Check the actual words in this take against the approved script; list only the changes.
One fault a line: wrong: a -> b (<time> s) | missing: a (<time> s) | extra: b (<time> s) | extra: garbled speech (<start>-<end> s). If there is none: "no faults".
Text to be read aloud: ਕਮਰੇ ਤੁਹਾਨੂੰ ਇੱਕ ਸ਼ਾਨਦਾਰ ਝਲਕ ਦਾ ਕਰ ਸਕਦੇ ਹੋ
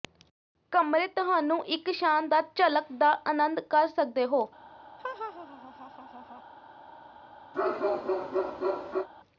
extra: ਆਨੰਦ (3.3 s)